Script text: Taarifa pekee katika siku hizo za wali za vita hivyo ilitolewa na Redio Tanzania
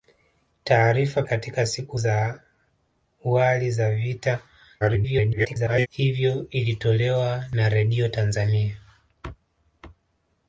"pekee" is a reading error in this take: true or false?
true